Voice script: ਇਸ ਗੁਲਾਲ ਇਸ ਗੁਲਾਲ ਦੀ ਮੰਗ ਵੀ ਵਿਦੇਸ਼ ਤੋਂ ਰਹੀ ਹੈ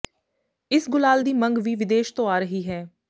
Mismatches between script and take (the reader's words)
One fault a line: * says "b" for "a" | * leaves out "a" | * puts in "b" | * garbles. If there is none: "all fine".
* leaves out "ਇਸ ਗੁਲਾਲ"
* puts in "ਆ"